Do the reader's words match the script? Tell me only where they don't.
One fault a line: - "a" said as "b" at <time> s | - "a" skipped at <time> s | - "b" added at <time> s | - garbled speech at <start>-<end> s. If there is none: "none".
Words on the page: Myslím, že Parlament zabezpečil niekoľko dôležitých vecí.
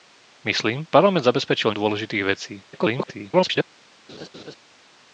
- "že" skipped at 0.9 s
- "niekoľko" skipped at 1.7 s
- garbled speech at 2.7-3.6 s